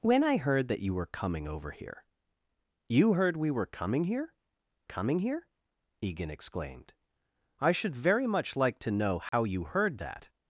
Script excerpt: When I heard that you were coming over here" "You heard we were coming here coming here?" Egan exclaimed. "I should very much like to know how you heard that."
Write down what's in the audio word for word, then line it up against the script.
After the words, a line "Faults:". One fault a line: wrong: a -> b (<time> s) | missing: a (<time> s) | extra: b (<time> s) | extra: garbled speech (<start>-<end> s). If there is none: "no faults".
When I heard that you were coming over here" "You heard we were coming here coming here?" Egan exclaimed. "I should very much like to know how you heard that."
Faults:
no faults